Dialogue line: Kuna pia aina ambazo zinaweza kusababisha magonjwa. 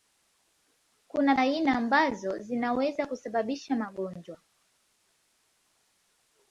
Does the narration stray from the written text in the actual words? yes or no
yes